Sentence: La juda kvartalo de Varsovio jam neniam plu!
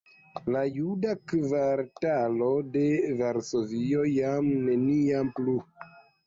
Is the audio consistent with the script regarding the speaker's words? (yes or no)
yes